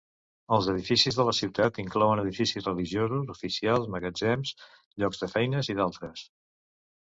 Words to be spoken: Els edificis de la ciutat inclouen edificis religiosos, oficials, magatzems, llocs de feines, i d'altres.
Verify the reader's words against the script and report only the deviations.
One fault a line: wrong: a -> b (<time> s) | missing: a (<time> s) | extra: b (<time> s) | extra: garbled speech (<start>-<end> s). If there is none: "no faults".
no faults